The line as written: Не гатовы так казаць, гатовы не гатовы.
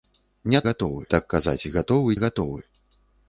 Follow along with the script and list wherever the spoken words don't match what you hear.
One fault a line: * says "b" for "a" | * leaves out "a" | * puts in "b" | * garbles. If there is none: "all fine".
all fine